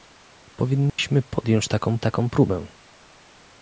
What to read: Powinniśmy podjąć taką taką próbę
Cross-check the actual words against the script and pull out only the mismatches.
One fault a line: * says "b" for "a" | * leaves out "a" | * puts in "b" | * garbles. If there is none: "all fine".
all fine